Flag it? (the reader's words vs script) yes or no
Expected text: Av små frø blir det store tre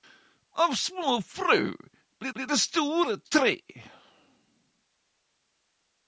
yes